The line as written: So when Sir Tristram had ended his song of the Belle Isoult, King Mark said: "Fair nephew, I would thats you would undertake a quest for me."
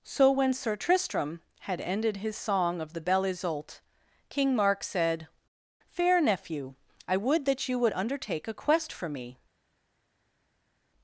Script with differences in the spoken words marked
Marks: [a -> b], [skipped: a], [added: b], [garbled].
So when Sir Tristram had ended his song of the Belle Isoult, King Mark said: "Fair nephew, I would [thats -> that] you would undertake a quest for me."